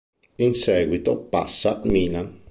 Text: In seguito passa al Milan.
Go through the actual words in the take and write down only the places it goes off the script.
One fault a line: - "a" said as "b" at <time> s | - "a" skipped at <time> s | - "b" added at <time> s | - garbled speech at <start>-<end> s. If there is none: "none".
- "al" skipped at 1.8 s